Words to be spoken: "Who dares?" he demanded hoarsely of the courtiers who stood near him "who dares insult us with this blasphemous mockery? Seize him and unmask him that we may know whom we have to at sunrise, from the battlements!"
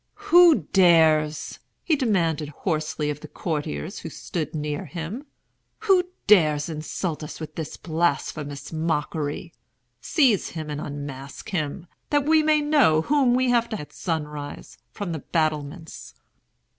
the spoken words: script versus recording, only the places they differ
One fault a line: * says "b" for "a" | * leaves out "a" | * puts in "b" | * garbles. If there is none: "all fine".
all fine